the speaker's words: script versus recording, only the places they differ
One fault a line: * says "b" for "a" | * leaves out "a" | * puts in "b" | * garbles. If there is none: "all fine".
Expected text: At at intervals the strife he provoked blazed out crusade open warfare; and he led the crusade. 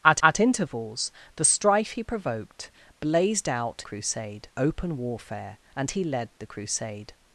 all fine